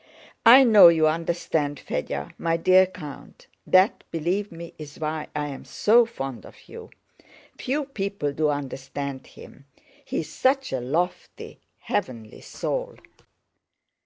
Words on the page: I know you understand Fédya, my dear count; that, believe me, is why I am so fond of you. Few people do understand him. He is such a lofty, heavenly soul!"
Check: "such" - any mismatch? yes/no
no